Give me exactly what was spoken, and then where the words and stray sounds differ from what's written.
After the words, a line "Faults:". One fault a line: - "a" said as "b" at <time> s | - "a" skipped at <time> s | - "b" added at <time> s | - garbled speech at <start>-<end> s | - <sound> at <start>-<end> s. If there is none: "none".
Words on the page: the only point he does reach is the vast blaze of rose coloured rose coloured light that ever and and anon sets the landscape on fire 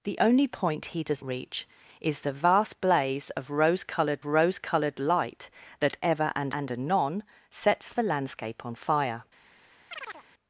the only point he does reach is the vast blaze of rose coloured rose coloured light that ever and and anon sets the landscape on fire
Faults:
- chirp at 9.9-10.2 s